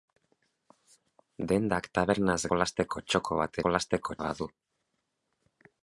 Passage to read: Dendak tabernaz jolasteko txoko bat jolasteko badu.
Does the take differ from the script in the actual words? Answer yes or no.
no